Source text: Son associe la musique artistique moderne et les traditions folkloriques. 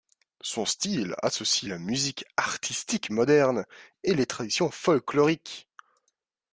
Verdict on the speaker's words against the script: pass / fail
fail